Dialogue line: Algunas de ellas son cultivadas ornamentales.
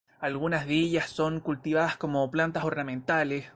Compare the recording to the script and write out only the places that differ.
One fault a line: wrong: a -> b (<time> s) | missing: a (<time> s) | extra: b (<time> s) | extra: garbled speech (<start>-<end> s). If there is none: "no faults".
extra: como plantas (2.0 s)